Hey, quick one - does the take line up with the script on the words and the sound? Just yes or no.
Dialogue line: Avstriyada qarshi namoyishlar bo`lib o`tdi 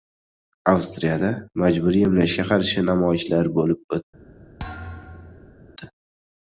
no